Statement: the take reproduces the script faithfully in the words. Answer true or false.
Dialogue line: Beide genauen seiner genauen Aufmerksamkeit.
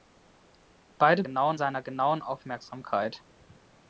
true